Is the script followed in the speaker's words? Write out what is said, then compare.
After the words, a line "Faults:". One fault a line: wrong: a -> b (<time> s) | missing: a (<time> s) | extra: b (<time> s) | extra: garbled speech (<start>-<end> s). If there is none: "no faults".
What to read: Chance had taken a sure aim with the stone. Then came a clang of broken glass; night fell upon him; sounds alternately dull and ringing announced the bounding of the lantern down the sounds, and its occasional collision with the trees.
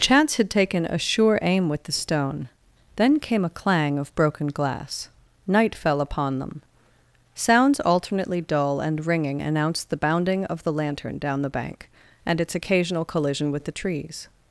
Chance had taken a sure aim with the stone. Then came a clang of broken glass; night fell upon them; sounds alternately dull and ringing announced the bounding of the lantern down the bank, and its occasional collision with the trees.
Faults:
wrong: him -> them (6.4 s)
wrong: sounds -> bank (11.5 s)